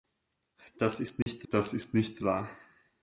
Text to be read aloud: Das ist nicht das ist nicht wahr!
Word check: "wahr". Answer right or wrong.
right